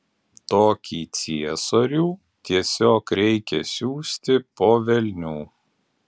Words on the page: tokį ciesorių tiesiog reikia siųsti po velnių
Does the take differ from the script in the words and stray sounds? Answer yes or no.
no